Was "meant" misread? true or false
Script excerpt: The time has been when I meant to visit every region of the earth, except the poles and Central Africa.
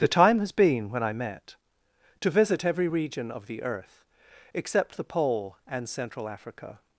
true